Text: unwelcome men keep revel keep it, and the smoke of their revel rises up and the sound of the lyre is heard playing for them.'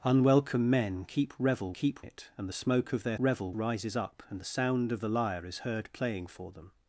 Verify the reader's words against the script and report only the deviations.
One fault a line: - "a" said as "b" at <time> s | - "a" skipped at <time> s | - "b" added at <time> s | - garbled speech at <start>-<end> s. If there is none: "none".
none